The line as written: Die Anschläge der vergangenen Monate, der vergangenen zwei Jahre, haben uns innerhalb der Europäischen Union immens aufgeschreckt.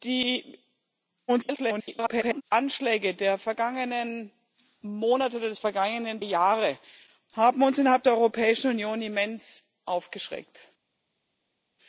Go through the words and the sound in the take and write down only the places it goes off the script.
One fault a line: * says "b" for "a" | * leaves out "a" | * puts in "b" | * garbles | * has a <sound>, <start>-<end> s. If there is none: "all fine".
* garbles
* leaves out "zwei"